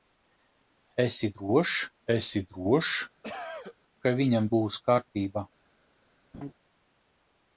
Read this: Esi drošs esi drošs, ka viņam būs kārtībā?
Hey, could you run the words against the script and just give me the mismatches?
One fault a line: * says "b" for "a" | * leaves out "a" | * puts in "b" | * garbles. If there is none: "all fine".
all fine